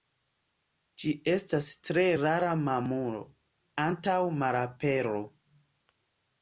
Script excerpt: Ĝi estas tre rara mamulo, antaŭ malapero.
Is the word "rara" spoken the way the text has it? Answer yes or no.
yes